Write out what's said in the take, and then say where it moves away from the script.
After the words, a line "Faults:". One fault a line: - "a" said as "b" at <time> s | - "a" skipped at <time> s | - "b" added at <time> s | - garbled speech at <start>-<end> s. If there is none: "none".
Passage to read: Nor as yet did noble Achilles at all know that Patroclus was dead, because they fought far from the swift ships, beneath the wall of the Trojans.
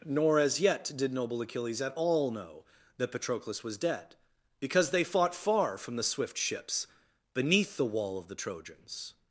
Nor as yet did noble Achilles at all know that Patroclus was dead, because they fought far from the swift ships, beneath the wall of the Trojans.
Faults:
none